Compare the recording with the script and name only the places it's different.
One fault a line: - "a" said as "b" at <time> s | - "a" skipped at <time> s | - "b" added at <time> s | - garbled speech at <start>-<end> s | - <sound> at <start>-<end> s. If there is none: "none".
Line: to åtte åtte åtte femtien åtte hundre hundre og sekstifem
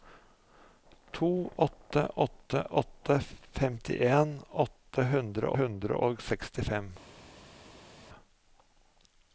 none